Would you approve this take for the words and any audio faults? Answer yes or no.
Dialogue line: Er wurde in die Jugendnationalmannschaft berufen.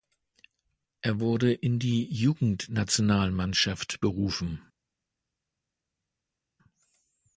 yes